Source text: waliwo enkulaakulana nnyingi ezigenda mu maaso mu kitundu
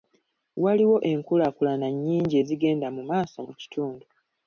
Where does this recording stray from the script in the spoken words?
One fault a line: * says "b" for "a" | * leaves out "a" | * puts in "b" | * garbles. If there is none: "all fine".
all fine